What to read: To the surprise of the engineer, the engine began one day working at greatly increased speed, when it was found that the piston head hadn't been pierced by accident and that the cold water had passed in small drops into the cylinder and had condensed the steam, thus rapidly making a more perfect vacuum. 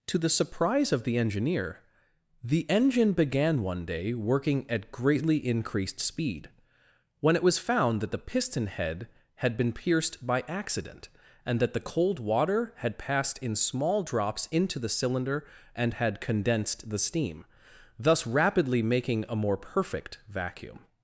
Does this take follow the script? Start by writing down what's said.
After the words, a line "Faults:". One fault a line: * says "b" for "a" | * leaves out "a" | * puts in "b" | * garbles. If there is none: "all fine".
To the surprise of the engineer, the engine began one day working at greatly increased speed, when it was found that the piston head had been pierced by accident and that the cold water had passed in small drops into the cylinder and had condensed the steam, thus rapidly making a more perfect vacuum.
Faults:
* says "had" for "hadn't"